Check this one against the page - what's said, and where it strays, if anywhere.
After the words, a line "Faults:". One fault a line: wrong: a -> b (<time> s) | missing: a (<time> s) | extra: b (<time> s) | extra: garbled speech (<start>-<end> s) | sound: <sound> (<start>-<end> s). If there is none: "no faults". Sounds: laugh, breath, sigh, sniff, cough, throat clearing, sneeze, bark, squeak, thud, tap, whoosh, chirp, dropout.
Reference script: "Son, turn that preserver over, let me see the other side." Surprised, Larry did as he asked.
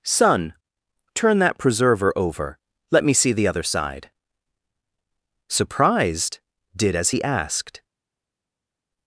"Son, turn that preserver over, let me see the other side." Surprised, did as he asked.
Faults:
missing: Larry (6.4 s)